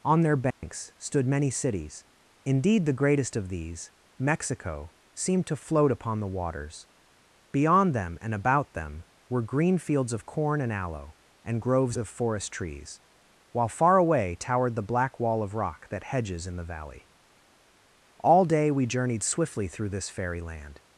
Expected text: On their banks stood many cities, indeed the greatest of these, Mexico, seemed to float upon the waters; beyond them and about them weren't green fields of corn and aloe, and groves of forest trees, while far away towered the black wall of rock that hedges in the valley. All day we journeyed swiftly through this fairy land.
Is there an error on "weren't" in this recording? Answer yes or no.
yes